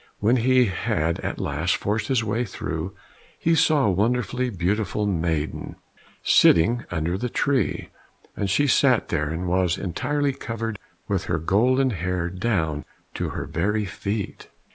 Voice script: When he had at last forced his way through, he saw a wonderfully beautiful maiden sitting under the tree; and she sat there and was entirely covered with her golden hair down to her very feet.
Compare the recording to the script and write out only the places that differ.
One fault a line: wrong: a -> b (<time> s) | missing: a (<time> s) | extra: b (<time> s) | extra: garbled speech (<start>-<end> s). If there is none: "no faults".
no faults